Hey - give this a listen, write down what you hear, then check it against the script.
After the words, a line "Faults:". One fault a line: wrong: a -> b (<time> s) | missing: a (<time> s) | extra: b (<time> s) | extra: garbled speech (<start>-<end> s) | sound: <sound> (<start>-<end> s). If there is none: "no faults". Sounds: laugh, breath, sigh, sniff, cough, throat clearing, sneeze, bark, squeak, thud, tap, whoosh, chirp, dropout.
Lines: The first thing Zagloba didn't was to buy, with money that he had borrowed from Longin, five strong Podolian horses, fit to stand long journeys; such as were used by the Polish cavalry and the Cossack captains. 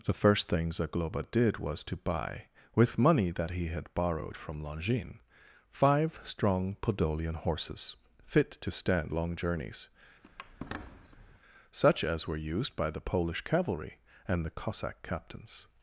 The first thing Zagloba did was to buy, with money that he had borrowed from Longin, five strong Podolian horses, fit to stand long journeys; such as were used by the Polish cavalry and the Cossack captains.
Faults:
wrong: didn't -> did (1.3 s)
sound: squeak (10.2-11.4 s)